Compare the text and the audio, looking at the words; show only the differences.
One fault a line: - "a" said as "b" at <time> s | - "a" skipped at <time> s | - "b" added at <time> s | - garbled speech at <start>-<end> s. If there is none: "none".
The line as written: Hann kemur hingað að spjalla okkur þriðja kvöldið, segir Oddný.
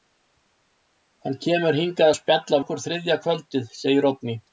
none